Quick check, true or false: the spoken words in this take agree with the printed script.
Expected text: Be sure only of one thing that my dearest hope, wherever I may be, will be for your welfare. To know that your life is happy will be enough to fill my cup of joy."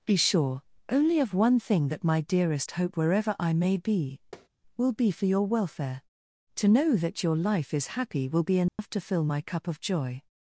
true